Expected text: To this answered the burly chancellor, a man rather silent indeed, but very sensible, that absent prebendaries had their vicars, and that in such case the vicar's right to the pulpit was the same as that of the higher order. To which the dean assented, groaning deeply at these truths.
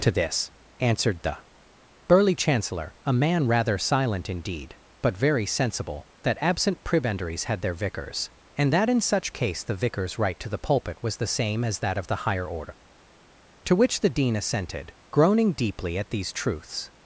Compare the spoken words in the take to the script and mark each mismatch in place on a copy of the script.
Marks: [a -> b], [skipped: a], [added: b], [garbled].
To this answered the burly chancellor, a man rather silent indeed, but very sensible, that absent prebendaries had their vicars, and that in such case the vicar's right to the pulpit was the same as that of the higher order. To which the dean assented, groaning deeply at these truths.